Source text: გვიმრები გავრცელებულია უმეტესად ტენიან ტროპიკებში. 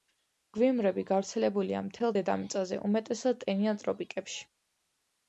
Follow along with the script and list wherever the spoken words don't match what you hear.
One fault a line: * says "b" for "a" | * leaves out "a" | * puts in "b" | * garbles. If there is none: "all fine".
* puts in "მთელ დედამიწაზე"